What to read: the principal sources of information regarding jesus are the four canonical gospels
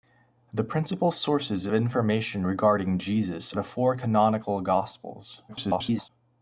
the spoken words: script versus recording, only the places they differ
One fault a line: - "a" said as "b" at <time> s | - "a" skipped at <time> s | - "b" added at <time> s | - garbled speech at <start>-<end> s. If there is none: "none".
- "of" skipped at 1.7 s
- "are" skipped at 3.5 s
- garbled speech at 5.5-6.1 s